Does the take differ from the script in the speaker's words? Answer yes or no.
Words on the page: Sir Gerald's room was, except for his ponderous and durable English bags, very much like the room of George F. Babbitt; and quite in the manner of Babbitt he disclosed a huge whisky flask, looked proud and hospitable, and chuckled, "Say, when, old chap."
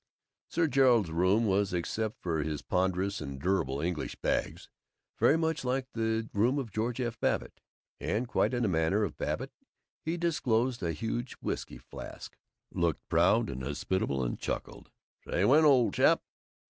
no